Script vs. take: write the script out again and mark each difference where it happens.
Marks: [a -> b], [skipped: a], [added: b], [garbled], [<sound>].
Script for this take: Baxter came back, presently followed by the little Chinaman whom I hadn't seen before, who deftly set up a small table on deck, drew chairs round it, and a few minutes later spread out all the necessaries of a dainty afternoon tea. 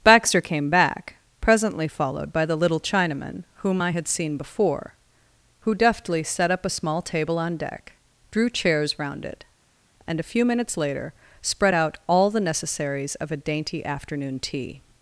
Baxter came back, presently followed by the little Chinaman whom I [hadn't -> had] seen before, who deftly set up a small table on deck, drew chairs round it, and a few minutes later spread out all the necessaries of a dainty afternoon tea.